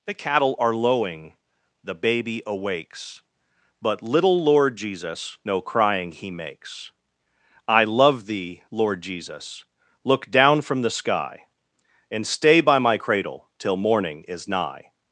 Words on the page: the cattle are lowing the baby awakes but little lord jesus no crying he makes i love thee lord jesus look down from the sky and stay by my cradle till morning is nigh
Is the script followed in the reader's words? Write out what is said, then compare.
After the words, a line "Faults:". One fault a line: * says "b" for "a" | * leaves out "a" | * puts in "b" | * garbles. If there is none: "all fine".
the cattle are lowing the baby awakes but little lord jesus no crying he makes i love thee lord jesus look down from the sky and stay by my cradle till morning is nigh
Faults:
all fine